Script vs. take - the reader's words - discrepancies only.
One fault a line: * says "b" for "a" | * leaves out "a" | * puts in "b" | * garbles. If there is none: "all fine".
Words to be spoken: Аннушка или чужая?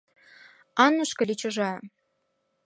all fine